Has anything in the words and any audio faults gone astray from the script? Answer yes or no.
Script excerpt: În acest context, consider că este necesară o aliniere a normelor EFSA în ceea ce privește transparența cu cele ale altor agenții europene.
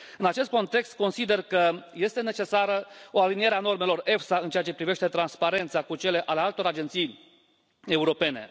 no